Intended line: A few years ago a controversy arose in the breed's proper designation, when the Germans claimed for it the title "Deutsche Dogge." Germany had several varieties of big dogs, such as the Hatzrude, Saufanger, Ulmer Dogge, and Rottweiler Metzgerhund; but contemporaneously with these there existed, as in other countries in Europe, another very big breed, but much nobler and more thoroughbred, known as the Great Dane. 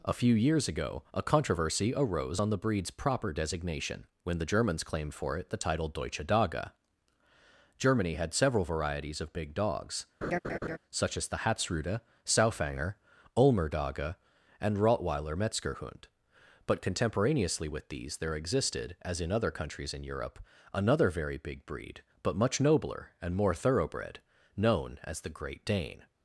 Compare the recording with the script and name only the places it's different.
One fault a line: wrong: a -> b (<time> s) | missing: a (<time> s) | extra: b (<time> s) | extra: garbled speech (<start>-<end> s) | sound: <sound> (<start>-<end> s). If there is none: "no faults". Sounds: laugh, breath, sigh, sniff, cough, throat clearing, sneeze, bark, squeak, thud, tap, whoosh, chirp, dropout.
wrong: in -> on (2.4 s)
sound: laugh (10.2-10.8 s)